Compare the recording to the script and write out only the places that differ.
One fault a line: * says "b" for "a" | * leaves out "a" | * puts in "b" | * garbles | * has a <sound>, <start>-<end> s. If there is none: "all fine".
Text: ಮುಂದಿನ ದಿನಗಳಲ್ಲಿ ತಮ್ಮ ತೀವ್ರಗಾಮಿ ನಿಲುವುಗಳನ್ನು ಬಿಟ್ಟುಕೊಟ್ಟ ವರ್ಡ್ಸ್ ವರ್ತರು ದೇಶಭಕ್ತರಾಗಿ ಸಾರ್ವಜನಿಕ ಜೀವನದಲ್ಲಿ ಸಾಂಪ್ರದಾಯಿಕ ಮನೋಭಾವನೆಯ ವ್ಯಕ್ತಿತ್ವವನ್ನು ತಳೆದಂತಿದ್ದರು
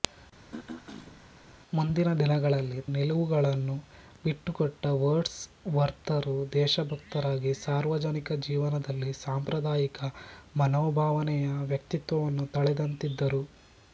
* has a throat clearing, 0.5-1.2 s
* leaves out "ತಮ್ಮ ತೀವ್ರಗಾಮಿ"